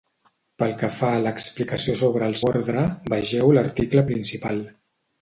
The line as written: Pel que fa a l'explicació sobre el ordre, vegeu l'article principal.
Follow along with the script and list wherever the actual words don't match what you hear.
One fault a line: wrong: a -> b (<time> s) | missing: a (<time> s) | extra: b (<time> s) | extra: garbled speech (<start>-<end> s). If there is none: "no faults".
no faults